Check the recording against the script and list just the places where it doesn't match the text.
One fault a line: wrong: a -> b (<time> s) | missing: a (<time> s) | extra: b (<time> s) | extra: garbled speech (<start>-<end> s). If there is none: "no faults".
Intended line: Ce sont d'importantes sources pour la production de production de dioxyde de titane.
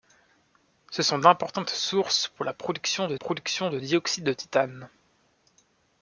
no faults